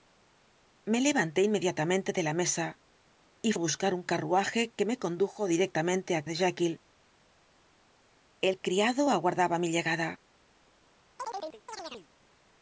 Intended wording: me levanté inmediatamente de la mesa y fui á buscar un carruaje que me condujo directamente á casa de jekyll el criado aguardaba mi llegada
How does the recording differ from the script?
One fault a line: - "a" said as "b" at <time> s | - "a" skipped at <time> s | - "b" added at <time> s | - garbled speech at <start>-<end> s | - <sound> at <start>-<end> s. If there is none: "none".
- "fui" skipped at 3.5 s
- "casa" skipped at 6.2 s
- chirp at 11.2-12.1 s